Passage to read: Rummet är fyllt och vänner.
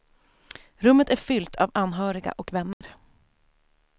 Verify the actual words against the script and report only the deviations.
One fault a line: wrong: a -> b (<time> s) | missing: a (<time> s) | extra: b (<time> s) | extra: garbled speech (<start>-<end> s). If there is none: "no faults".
extra: av anhöriga (1.6 s)